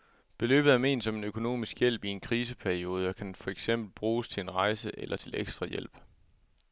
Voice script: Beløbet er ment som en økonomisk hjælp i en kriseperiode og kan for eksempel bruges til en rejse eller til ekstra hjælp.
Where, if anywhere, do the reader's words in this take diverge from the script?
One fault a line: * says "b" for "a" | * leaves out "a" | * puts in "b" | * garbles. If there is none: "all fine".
all fine